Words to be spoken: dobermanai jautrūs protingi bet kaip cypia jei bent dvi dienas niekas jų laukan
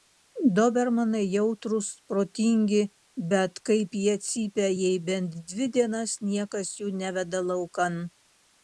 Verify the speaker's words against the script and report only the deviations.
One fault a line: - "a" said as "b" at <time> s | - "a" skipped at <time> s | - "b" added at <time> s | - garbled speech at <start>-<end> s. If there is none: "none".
- "jie" added at 4.0 s
- "neveda" added at 7.0 s